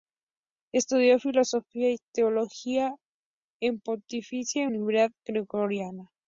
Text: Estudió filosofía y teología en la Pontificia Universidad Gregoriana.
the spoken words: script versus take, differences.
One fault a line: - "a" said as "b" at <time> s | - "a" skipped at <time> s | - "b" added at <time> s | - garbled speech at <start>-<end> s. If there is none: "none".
none